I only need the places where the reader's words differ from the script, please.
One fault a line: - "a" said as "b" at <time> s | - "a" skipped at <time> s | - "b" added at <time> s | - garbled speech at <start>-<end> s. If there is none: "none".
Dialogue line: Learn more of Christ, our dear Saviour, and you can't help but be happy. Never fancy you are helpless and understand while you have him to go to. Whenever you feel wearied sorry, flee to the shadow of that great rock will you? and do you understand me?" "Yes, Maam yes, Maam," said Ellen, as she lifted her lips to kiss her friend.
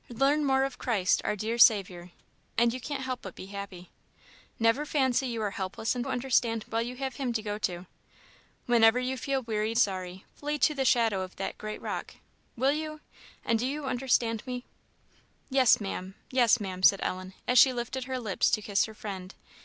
none